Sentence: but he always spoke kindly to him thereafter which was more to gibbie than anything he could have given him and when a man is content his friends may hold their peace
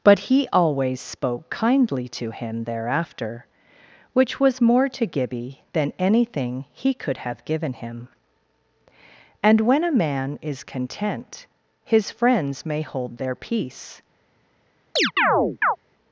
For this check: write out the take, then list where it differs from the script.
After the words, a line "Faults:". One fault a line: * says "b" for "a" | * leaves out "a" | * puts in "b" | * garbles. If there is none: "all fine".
but he always spoke kindly to him thereafter which was more to gibbie than anything he could have given him and when a man is content his friends may hold their peace
Faults:
all fine